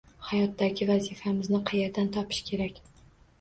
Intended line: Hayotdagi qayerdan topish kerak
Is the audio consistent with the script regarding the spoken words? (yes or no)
no